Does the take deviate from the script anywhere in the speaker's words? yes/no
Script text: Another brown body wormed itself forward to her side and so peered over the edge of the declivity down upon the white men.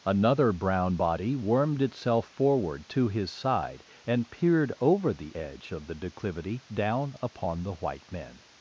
yes